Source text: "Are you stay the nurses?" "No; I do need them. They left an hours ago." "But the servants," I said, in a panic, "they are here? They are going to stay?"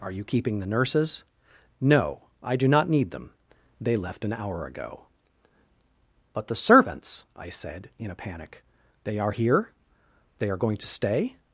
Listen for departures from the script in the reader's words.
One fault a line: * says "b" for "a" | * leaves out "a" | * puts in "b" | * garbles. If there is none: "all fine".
* says "keeping" for "stay"
* puts in "not"
* says "hour" for "hours"